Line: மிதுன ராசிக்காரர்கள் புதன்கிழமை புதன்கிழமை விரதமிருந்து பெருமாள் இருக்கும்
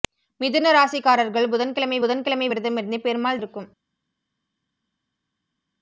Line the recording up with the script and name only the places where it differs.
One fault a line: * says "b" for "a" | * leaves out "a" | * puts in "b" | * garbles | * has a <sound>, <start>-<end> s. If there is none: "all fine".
all fine